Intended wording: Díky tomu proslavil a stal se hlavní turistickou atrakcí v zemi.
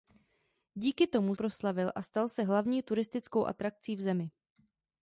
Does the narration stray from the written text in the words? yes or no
no